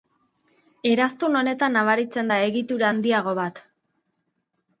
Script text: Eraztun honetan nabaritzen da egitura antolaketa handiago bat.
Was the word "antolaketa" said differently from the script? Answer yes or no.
yes